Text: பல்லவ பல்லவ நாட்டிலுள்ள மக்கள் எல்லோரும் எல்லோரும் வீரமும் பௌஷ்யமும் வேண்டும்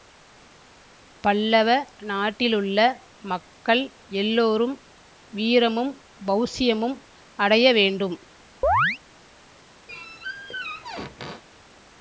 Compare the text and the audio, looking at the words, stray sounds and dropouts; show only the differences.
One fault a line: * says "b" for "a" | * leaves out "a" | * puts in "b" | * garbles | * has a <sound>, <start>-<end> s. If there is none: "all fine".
* leaves out "பல்லவ"
* leaves out "எல்லோரும்"
* puts in "அடைய"
* has a chirp, 8.6-9.0 s
* has a squeak, 9.9-11.4 s